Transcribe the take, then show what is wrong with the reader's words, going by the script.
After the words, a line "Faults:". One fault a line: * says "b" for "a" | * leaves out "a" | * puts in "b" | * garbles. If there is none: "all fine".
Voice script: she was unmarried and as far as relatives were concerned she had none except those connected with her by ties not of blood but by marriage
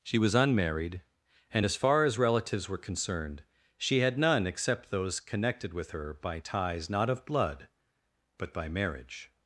she was unmarried and as far as relatives were concerned she had none except those connected with her by ties not of blood but by marriage
Faults:
all fine